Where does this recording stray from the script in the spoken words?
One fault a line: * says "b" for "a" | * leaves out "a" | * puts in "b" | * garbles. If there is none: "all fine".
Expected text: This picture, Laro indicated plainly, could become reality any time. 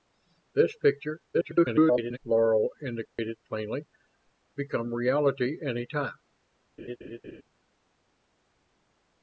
* garbles
* leaves out "could"